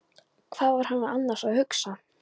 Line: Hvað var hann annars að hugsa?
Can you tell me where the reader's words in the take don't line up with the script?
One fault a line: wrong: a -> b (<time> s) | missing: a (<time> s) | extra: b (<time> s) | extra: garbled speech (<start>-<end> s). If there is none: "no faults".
no faults